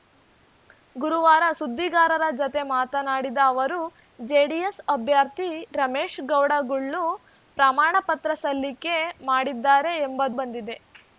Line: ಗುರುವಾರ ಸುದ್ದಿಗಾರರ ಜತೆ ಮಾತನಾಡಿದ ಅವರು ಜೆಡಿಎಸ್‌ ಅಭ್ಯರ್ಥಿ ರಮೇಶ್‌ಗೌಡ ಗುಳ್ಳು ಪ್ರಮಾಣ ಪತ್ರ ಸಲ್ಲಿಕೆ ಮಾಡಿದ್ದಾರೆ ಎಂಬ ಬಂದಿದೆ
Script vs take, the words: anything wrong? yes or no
no